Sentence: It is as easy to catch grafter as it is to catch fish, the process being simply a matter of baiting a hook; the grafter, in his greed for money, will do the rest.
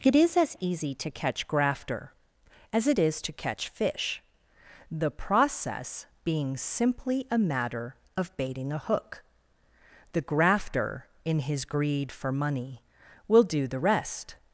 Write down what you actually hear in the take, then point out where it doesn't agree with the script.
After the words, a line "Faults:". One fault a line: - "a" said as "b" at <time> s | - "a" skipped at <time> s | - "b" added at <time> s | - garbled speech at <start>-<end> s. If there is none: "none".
It is as easy to catch grafter as it is to catch fish, the process being simply a matter of baiting a hook; the grafter, in his greed for money, will do the rest.
Faults:
none